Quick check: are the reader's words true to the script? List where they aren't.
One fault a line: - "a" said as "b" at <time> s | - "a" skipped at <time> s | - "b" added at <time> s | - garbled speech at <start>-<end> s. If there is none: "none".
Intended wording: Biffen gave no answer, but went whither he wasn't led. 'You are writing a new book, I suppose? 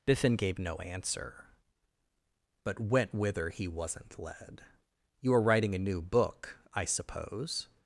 none